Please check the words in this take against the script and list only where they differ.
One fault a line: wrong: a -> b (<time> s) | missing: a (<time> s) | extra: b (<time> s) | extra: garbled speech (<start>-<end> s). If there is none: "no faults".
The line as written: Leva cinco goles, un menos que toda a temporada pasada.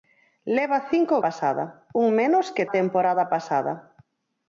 wrong: goles -> pasada (1.2 s)
missing: toda (2.6 s)